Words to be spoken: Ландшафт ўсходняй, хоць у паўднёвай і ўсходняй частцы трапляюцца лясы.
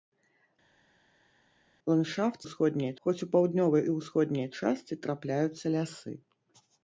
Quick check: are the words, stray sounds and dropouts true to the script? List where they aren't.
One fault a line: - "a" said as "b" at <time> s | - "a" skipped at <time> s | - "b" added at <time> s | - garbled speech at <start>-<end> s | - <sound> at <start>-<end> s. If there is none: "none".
none